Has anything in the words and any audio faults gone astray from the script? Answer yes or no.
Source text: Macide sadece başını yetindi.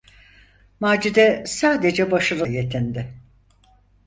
no